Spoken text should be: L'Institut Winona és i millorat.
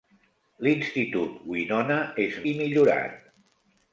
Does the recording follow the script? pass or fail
pass